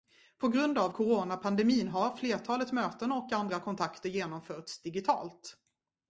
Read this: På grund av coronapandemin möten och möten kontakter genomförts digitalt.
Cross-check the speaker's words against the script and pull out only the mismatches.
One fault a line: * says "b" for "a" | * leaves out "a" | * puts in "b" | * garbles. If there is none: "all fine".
* puts in "har flertalet"
* says "andra" for "möten"